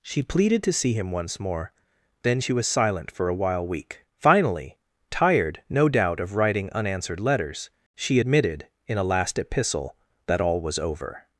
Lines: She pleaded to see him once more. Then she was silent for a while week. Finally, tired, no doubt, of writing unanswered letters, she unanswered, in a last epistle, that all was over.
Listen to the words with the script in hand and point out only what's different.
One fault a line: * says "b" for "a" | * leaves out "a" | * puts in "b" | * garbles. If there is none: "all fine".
* says "admitted" for "unanswered"